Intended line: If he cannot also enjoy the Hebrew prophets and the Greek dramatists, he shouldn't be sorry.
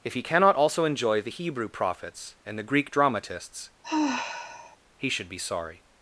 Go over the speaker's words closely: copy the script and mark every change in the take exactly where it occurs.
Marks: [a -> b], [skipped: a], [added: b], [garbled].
If he cannot also enjoy the Hebrew prophets and the Greek dramatists, he [shouldn't -> should] be sorry.